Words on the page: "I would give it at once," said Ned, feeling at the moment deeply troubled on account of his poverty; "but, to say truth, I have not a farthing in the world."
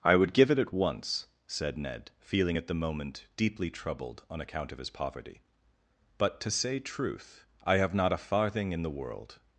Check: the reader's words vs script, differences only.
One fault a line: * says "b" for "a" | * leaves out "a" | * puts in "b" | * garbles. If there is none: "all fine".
all fine